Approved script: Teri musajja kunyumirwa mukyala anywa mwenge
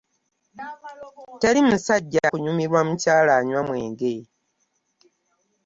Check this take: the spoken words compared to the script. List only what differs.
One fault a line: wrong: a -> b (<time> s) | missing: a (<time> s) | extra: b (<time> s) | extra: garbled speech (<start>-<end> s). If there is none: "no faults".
no faults